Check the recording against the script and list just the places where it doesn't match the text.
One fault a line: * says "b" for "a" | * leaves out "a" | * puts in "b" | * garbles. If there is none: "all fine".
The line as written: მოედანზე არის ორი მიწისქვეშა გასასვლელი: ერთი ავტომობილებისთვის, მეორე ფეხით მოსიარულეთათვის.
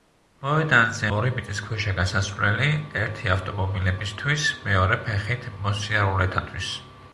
* leaves out "არის"